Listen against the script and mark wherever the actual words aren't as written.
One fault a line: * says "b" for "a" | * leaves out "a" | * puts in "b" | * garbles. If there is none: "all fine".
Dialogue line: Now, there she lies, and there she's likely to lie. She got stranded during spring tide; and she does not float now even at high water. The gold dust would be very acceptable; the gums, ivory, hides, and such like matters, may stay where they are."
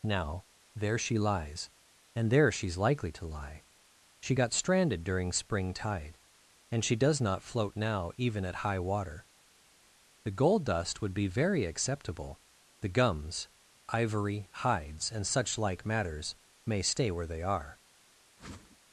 all fine